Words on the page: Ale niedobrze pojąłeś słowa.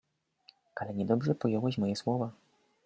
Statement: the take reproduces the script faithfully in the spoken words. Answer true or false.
false